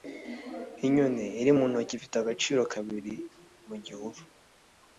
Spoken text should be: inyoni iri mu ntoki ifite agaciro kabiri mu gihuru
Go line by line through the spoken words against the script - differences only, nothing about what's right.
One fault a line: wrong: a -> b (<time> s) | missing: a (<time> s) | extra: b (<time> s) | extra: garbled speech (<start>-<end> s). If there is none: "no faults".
no faults